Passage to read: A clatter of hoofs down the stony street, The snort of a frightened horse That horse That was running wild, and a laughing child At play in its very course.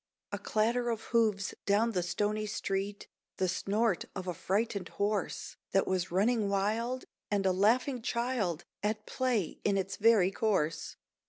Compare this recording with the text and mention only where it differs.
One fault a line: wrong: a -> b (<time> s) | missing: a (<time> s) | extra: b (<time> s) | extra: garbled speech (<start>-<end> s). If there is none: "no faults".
missing: horse That (5.8 s)